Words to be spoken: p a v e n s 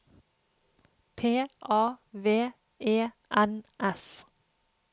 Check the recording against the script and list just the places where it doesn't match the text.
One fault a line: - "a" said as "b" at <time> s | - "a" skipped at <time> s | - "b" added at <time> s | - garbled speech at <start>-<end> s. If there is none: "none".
none